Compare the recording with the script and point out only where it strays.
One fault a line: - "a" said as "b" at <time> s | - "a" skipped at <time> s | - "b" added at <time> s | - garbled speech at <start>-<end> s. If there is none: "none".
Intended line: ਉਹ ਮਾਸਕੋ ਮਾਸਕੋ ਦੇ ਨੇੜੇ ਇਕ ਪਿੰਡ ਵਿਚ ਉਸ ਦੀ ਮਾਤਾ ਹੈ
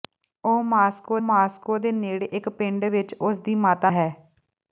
none